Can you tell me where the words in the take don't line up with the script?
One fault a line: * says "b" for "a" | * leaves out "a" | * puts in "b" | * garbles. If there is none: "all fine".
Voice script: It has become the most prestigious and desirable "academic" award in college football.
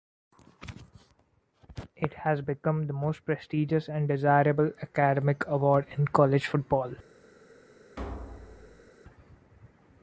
all fine